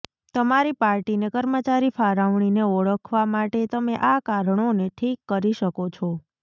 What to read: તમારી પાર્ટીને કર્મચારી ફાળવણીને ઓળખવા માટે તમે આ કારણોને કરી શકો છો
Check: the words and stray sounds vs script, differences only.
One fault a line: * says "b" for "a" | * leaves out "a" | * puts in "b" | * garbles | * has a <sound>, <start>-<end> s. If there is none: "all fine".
* puts in "ઠીક"